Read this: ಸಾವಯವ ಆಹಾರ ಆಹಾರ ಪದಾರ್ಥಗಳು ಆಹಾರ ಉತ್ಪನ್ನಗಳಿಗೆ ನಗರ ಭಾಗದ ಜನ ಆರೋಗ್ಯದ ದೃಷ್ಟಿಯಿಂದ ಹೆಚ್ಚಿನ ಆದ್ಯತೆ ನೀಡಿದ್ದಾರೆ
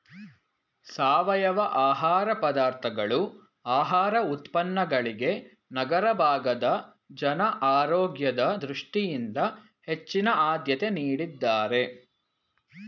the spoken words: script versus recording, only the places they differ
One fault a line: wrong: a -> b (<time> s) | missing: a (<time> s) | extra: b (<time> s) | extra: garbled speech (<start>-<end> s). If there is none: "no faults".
missing: ಆಹಾರ (2.3 s)